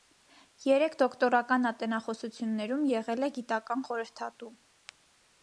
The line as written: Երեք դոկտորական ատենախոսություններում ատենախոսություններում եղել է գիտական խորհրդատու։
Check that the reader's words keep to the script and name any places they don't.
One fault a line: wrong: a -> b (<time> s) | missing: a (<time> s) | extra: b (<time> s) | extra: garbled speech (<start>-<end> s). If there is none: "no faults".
missing: ատենախոսություններում (2.8 s)